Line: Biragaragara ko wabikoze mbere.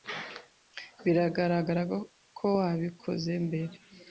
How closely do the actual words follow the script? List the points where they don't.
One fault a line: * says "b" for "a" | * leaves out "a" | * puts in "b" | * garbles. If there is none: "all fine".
all fine